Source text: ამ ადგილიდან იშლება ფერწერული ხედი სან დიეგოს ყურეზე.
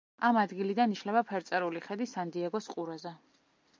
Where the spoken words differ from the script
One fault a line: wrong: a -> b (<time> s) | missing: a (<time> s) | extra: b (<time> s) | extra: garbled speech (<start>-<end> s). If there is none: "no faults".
no faults